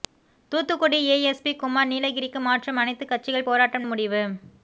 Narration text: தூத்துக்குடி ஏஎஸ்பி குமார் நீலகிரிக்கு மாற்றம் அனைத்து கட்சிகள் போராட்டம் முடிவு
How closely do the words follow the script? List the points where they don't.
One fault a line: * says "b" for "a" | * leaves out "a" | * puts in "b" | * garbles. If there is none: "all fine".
all fine